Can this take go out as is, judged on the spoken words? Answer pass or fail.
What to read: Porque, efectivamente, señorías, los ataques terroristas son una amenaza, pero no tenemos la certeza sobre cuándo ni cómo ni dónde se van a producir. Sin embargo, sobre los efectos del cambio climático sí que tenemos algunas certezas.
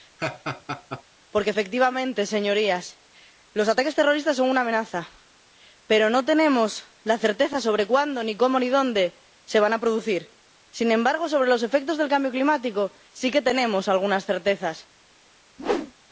pass